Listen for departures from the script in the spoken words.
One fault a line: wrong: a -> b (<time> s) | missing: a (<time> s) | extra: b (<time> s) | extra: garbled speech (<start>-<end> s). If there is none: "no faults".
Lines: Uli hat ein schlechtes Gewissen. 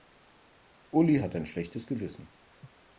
no faults